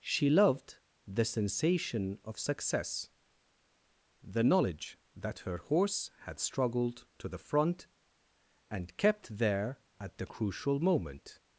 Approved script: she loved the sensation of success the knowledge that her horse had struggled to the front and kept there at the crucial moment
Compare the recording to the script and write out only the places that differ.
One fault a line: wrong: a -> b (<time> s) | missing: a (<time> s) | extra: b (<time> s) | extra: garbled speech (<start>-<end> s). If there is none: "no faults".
no faults